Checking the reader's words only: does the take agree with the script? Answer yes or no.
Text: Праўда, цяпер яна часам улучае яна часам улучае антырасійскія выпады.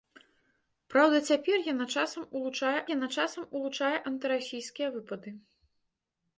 yes